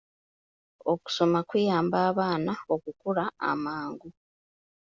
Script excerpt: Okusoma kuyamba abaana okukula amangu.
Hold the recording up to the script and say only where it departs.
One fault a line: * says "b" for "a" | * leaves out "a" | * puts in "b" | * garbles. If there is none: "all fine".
all fine